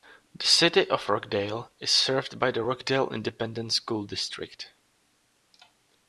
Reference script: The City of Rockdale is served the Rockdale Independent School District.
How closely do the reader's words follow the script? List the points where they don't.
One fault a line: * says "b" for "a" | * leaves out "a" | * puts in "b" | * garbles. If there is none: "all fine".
* puts in "by"